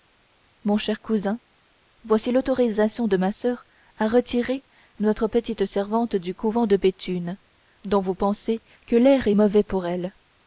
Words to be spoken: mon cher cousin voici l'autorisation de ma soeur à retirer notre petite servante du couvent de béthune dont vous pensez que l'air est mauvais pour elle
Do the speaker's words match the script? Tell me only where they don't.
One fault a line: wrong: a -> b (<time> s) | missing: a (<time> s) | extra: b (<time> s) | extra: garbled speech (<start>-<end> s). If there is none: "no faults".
no faults